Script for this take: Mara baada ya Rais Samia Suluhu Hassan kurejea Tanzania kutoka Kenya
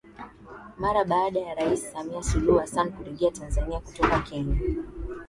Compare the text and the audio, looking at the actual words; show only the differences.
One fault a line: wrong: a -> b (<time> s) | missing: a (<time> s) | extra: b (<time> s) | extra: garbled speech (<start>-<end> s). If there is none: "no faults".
no faults